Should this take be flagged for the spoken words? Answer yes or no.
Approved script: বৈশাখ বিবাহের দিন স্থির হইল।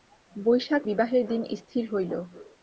no